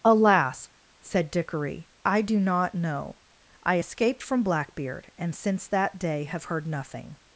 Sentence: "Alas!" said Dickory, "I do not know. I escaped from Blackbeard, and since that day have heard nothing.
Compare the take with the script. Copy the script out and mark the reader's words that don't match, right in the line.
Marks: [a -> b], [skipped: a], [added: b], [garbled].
"Alas!" said Dickory, "I do not know. I escaped from Blackbeard, and since that day have heard nothing.